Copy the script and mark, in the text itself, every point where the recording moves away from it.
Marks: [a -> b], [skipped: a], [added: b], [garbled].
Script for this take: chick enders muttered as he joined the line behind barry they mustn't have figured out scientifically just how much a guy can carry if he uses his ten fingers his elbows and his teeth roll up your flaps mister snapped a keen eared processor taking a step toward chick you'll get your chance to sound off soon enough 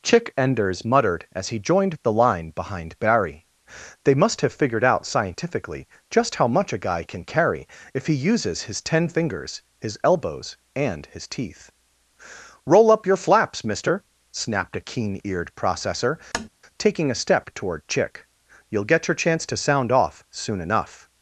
chick enders muttered as he joined the line behind barry they [mustn't -> must] have figured out scientifically just how much a guy can carry if he uses his ten fingers his elbows and his teeth roll up your flaps mister snapped a keen eared processor taking a step toward chick you'll get your chance to sound off soon enough